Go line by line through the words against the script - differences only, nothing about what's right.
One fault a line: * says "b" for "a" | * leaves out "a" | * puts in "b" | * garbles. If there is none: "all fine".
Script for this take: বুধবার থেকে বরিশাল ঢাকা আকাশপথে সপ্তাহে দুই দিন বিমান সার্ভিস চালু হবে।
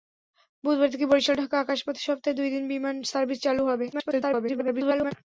* garbles